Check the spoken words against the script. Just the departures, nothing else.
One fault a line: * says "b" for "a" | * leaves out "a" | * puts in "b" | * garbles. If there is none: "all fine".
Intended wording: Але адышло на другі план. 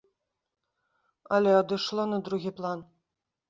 all fine